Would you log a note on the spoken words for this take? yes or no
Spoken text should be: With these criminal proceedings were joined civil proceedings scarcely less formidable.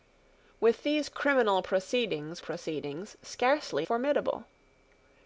yes